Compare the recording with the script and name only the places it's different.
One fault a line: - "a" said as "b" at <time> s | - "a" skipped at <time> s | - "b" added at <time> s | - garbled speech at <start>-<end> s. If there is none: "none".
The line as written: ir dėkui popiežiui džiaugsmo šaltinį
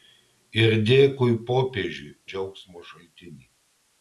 none